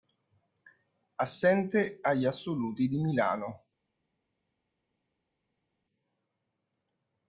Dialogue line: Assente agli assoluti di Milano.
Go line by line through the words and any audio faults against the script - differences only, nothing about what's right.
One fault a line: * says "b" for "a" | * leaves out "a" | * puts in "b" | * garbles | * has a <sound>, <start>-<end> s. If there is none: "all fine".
all fine